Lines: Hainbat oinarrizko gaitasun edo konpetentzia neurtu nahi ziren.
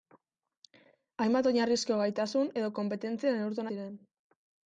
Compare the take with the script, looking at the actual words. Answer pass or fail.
fail